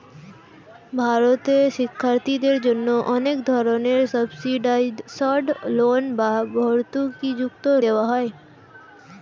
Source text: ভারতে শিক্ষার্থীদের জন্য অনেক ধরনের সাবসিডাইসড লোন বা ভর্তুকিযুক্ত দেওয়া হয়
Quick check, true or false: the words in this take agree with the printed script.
true